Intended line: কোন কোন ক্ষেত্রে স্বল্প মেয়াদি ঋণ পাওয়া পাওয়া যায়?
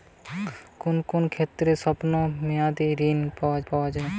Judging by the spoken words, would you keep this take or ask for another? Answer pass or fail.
pass